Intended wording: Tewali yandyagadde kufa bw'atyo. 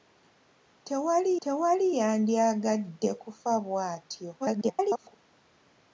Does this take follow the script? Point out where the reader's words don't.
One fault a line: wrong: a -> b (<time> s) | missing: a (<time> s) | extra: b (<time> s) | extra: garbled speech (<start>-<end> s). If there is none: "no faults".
extra: tewali (1.4 s)
extra: garbled speech (4.4-5.2 s)